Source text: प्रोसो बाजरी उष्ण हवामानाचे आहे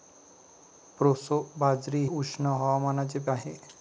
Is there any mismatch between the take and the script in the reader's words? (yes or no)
no